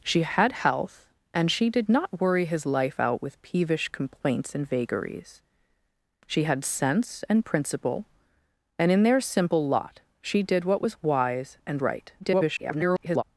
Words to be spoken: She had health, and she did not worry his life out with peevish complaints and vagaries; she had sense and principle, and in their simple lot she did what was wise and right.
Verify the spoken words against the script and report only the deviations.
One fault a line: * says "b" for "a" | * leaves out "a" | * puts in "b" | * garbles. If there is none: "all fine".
* garbles